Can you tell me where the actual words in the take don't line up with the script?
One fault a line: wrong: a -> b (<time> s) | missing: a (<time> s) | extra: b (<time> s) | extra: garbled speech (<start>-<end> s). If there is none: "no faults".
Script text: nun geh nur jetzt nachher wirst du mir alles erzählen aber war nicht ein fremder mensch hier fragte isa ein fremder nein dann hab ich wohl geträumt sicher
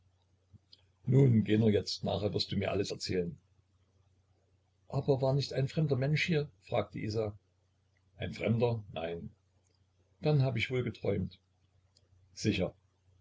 no faults